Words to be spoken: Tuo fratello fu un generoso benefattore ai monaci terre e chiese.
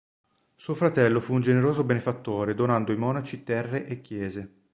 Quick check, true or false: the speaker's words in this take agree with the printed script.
false